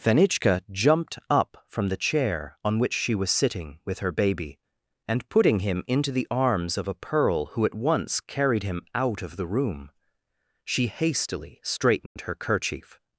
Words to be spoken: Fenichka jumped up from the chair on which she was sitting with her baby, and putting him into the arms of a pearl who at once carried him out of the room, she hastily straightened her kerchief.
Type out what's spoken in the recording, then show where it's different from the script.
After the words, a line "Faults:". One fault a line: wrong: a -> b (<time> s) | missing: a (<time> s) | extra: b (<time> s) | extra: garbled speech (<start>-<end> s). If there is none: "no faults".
Fenichka jumped up from the chair on which she was sitting with her baby, and putting him into the arms of a pearl who at once carried him out of the room, she hastily straightened her kerchief.
Faults:
no faults